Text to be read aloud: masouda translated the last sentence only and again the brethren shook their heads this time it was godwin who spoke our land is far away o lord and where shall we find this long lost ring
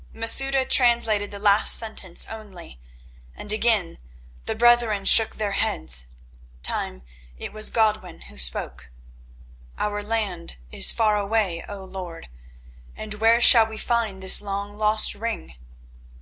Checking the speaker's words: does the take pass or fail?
fail